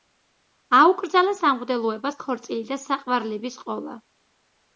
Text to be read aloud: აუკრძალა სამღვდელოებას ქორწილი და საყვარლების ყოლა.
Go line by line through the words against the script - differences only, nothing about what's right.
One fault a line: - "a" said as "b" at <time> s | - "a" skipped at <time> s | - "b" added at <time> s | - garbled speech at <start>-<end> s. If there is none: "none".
none